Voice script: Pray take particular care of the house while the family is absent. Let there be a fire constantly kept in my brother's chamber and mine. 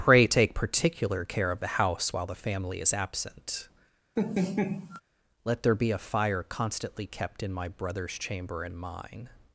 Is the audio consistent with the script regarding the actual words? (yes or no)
yes